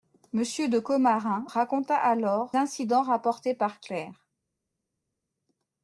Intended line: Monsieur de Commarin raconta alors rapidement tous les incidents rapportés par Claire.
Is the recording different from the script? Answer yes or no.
yes